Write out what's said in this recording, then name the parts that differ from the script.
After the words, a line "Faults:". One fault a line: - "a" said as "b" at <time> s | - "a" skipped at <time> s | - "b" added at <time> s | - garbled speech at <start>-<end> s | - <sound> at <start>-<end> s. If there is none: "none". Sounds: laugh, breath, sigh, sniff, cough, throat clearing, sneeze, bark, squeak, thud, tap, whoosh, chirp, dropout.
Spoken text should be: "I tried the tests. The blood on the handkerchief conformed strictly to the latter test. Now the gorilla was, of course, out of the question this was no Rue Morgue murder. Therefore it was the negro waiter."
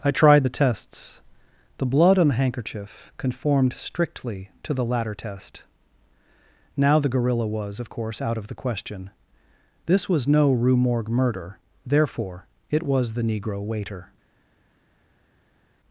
"I tried the tests. The blood on the handkerchief conformed strictly to the latter test. Now the gorilla was, of course, out of the question this was no Rue Morgue murder. Therefore it was the negro waiter."
Faults:
none